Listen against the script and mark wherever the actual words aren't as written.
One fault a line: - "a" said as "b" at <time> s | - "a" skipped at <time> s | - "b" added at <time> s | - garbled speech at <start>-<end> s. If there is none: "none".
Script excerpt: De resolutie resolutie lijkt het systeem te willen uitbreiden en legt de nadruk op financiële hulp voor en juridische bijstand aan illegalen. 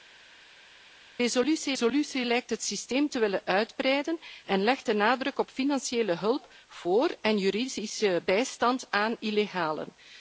none